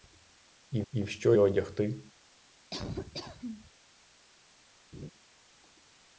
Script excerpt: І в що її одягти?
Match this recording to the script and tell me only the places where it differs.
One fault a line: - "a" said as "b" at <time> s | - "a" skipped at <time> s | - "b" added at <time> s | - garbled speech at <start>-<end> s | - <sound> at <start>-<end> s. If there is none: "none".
- "і" added at 0.9 s
- "її" skipped at 1.4 s
- laugh at 2.7-3.7 s
- laugh at 4.9-5.1 s